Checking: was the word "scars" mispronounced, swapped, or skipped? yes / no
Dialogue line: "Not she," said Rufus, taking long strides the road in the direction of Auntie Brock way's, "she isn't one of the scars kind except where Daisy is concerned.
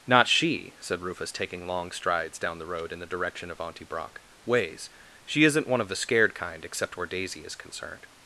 yes